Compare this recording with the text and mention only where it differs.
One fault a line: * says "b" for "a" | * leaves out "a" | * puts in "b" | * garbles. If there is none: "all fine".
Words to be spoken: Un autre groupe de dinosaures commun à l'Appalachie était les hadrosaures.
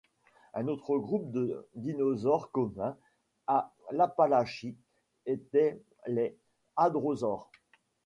all fine